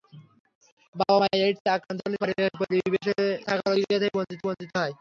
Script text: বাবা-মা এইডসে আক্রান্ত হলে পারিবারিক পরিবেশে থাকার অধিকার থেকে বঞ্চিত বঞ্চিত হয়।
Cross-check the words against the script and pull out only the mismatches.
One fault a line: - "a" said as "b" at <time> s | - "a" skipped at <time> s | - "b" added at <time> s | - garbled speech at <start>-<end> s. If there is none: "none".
none